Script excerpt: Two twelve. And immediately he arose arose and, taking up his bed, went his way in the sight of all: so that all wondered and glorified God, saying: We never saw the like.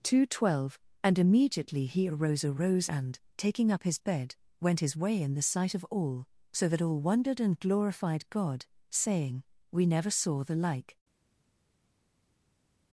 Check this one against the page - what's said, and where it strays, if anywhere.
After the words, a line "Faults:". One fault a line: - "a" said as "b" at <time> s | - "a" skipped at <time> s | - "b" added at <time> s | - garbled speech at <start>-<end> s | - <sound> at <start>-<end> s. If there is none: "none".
Two twelve. And immediately he arose arose and, taking up his bed, went his way in the sight of all: so that all wondered and glorified God, saying: We never saw the like.
Faults:
none